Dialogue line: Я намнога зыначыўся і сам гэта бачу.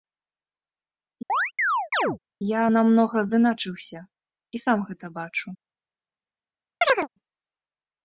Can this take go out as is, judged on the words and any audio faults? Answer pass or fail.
fail